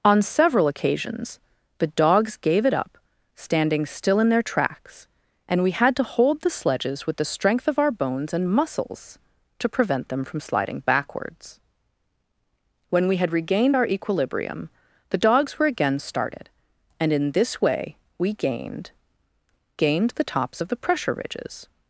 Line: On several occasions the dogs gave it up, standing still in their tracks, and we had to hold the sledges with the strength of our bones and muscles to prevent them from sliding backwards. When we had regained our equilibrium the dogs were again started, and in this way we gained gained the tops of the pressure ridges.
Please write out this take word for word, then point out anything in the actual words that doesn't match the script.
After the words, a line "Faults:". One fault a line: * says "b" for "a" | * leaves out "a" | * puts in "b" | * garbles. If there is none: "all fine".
On several occasions the dogs gave it up, standing still in their tracks, and we had to hold the sledges with the strength of our bones and muscles to prevent them from sliding backwards. When we had regained our equilibrium the dogs were again started, and in this way we gained gained the tops of the pressure ridges.
Faults:
all fine